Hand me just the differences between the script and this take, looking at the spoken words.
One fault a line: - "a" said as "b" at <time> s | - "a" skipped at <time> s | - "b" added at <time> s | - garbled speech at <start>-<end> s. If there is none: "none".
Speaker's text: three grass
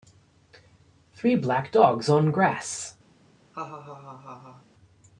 - "black dogs on" added at 1.4 s